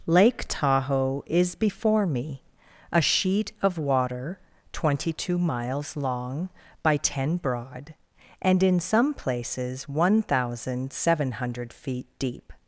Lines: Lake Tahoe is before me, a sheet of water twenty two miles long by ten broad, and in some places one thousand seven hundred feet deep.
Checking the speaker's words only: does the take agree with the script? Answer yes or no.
yes